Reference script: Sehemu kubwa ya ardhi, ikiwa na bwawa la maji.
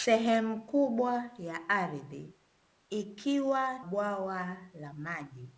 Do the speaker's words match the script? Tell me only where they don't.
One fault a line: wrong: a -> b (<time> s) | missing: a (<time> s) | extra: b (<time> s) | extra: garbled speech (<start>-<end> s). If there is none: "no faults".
missing: na (3.9 s)